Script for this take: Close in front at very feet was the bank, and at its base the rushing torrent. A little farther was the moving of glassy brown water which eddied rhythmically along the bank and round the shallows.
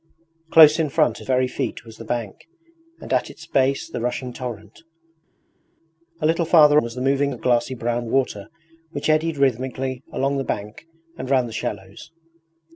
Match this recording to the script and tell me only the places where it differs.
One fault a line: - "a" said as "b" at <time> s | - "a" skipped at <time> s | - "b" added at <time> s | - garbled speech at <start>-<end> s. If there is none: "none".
none